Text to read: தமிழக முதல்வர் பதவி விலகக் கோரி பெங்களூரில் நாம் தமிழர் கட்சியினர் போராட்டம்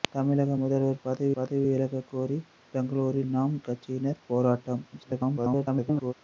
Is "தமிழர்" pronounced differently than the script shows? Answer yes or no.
yes